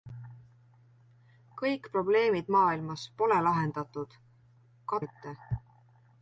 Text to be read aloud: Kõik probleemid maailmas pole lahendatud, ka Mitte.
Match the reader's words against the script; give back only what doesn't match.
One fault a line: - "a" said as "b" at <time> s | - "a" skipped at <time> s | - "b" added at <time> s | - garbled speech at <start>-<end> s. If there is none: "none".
none